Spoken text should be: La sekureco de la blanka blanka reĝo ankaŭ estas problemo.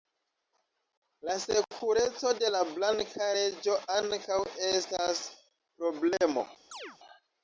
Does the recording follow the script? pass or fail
fail